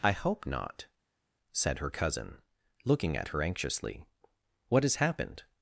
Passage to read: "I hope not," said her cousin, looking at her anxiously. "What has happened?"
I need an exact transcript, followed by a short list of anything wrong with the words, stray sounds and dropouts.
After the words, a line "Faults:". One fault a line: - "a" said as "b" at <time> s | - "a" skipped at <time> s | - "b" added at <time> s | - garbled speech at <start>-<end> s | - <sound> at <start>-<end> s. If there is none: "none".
"I hope not," said her cousin, looking at her anxiously. "What has happened?"
Faults:
none